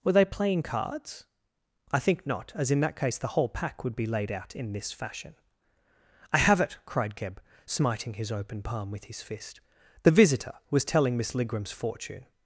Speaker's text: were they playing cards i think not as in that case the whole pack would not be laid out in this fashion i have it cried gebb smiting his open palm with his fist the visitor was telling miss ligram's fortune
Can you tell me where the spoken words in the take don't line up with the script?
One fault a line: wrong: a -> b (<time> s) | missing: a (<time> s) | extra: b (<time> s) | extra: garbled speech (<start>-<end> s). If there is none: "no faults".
missing: not (4.0 s)